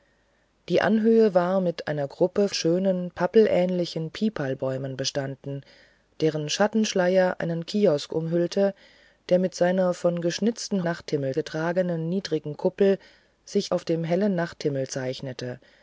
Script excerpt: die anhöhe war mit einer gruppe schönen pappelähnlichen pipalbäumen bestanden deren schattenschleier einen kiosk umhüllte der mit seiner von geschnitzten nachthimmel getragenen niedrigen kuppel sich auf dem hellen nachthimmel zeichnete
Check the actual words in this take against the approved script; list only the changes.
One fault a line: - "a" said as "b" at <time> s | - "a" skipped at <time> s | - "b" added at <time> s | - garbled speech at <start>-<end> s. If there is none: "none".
none